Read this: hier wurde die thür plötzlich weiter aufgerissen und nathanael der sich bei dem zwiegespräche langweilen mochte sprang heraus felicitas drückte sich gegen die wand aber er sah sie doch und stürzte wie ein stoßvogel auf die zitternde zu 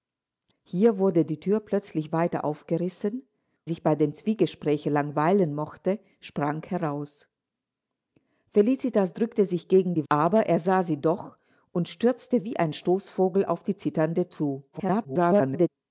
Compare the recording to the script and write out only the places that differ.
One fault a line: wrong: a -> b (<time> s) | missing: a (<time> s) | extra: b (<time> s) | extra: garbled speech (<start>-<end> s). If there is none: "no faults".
missing: und nathanael der (3.2 s)
missing: wand (10.1 s)
extra: garbled speech (14.7-15.7 s)